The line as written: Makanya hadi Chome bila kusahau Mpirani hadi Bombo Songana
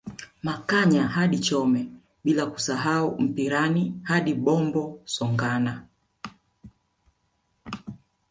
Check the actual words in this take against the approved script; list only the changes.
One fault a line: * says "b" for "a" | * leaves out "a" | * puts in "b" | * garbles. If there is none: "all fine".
all fine